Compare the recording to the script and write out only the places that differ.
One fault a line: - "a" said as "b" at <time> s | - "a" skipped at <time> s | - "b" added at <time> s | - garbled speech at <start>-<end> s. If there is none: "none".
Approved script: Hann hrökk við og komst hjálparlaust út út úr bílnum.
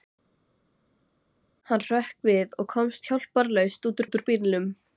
none